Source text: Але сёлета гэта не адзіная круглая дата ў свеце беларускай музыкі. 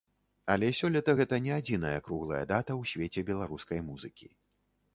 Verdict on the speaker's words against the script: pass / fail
pass